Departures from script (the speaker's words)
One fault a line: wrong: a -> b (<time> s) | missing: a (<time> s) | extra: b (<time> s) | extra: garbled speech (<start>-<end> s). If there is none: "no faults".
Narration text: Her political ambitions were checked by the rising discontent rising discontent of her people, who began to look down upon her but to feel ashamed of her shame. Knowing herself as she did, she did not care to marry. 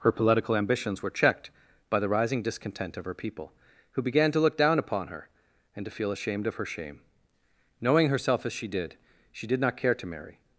missing: rising discontent (3.0 s)
wrong: but -> and (5.8 s)